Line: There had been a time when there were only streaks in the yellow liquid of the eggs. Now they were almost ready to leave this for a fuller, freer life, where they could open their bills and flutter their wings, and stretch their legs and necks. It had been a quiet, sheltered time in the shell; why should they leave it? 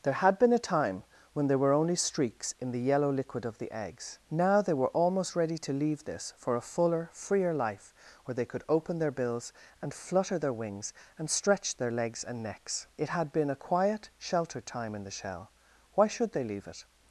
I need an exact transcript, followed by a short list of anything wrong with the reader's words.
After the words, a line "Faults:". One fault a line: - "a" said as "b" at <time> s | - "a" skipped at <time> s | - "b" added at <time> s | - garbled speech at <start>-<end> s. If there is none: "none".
There had been a time when there were only streaks in the yellow liquid of the eggs. Now they were almost ready to leave this for a fuller, freer life, where they could open their bills and flutter their wings, and stretch their legs and necks. It had been a quiet, sheltered time in the shell; why should they leave it?
Faults:
none